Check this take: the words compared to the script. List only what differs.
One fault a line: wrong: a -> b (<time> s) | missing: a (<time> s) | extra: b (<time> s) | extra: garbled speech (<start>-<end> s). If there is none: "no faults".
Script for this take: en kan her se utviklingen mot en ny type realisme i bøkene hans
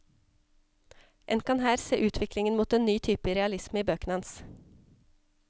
no faults